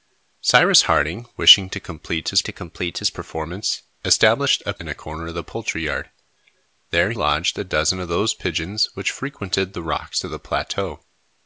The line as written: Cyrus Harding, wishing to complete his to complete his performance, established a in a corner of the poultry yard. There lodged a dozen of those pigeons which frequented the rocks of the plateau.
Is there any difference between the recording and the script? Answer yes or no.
no